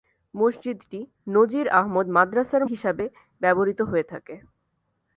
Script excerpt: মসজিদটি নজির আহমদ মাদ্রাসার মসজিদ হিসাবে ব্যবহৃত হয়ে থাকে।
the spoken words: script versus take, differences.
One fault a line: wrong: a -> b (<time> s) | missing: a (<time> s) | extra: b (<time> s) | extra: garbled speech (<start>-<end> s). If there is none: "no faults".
missing: মসজিদ (2.6 s)